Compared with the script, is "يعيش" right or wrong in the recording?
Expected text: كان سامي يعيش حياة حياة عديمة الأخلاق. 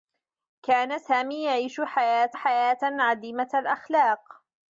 right